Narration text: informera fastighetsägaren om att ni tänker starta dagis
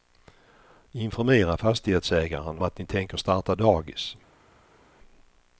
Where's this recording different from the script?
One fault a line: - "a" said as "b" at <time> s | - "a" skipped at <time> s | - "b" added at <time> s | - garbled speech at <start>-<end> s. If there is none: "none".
- "om" skipped at 2.6 s